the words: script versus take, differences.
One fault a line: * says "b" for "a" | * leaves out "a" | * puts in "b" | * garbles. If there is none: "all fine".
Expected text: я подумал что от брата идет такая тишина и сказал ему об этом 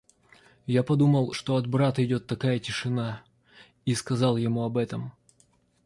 all fine